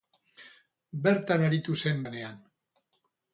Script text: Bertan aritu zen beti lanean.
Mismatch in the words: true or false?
true